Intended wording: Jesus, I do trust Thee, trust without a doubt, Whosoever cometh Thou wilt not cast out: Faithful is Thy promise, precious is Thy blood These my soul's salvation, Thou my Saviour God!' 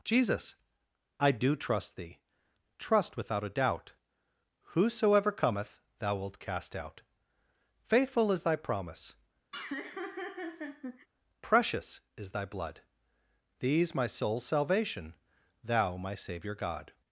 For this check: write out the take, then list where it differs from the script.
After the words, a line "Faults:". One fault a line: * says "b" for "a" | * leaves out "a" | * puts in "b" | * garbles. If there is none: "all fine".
Jesus, I do trust Thee, trust without a doubt, Whosoever cometh Thou wilt cast out: Faithful is Thy promise, precious is Thy blood These my soul's salvation, Thou my Saviour God!'
Faults:
* leaves out "not"